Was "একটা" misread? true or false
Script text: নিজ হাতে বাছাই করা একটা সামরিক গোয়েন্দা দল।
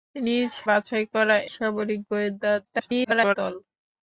true